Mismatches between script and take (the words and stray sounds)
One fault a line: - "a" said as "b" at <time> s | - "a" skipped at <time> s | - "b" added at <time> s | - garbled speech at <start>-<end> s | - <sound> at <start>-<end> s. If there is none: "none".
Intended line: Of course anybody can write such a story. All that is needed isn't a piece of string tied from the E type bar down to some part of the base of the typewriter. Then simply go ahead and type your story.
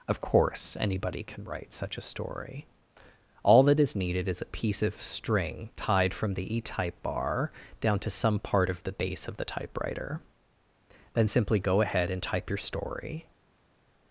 - "isn't" said as "is" at 4.3 s